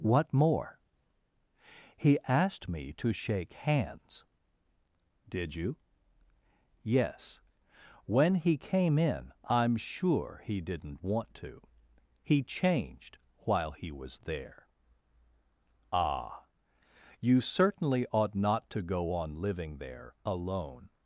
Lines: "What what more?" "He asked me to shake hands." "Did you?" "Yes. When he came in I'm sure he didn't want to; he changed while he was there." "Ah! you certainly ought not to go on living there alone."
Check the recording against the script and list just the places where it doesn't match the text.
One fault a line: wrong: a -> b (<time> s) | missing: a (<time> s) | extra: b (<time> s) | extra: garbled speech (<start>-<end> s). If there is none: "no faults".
missing: what (0.3 s)